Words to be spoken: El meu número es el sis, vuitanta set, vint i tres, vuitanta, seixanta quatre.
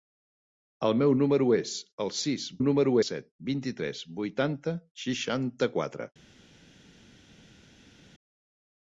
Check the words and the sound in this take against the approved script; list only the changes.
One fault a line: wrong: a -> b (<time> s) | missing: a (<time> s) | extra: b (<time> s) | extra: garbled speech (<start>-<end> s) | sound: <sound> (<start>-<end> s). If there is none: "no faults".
wrong: vuitanta -> número (2.6 s)